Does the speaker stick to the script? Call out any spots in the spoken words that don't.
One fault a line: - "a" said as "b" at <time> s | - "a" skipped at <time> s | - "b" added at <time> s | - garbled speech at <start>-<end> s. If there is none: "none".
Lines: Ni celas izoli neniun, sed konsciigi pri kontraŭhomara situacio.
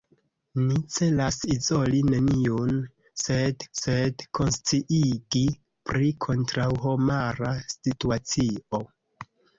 - "sed" added at 3.8 s